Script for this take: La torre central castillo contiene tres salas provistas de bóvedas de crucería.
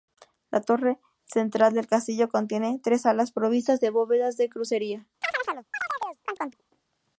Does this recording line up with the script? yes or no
no